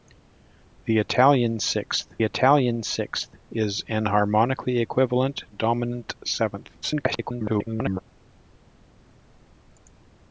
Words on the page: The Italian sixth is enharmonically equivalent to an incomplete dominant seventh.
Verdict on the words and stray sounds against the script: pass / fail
fail